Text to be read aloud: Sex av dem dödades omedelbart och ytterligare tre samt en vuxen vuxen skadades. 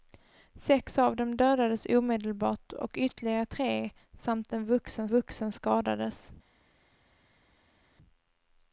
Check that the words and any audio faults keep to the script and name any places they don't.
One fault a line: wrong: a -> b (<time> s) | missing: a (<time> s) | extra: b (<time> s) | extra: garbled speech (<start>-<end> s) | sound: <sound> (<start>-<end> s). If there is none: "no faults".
no faults